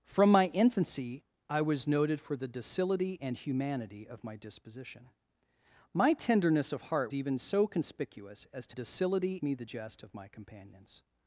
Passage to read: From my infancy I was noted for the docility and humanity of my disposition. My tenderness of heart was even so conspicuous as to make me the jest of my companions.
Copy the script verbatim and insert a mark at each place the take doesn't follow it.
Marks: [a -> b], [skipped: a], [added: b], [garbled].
From my infancy I was noted for the docility and humanity of my disposition. My tenderness of heart [skipped: was] even so conspicuous as to [make -> docility] me the jest of my companions.